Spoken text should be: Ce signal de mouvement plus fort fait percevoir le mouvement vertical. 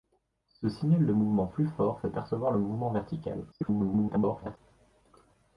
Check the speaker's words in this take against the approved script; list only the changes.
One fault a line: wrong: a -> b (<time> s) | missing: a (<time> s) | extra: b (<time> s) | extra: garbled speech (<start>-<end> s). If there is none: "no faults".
extra: garbled speech (3.5-4.6 s)